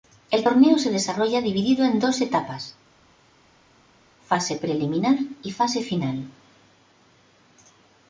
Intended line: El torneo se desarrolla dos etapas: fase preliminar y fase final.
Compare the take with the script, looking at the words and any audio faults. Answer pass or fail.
fail